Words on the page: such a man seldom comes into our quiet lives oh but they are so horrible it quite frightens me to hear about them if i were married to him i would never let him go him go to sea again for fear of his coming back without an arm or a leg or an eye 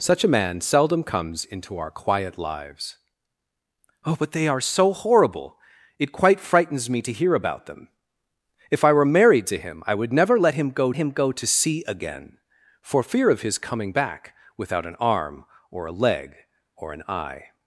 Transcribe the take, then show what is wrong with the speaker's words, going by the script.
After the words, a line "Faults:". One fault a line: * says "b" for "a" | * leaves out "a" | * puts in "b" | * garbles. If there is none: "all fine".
such a man seldom comes into our quiet lives oh but they are so horrible it quite frightens me to hear about them if i were married to him i would never let him go him go to sea again for fear of his coming back without an arm or a leg or an eye
Faults:
all fine